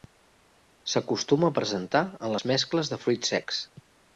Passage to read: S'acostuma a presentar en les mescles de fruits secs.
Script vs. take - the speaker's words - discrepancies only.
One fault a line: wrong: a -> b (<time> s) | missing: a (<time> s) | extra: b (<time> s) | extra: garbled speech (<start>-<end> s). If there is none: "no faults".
no faults